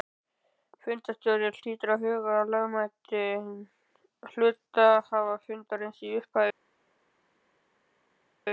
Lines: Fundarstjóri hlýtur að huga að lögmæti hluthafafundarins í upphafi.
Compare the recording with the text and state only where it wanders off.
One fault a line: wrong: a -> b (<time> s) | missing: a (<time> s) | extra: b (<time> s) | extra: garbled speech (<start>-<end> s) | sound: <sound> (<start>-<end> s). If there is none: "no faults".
no faults